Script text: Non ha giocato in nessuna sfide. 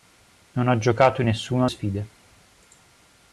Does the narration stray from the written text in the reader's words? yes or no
no